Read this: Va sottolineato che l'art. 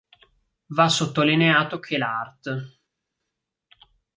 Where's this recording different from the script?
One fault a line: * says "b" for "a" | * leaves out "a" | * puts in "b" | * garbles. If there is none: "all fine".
all fine